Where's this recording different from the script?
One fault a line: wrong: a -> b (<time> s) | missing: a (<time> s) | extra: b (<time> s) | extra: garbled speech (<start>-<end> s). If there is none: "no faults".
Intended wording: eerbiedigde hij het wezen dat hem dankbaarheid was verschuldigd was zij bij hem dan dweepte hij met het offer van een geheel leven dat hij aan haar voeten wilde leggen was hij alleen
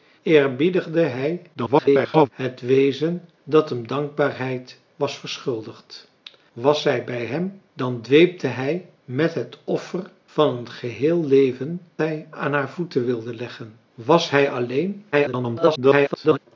extra: garbled speech (1.5-2.3 s)
missing: dat (11.8 s)
extra: garbled speech (15.1-16.4 s)